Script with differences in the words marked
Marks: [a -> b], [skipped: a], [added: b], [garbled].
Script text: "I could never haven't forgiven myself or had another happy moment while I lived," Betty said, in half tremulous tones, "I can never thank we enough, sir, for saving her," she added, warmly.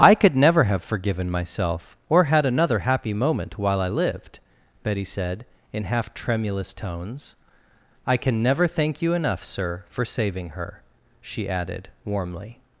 "I could never [haven't -> have] forgiven myself or had another happy moment while I lived," Betty said, in half tremulous tones, "I can never thank [we -> you] enough, sir, for saving her," she added, warmly.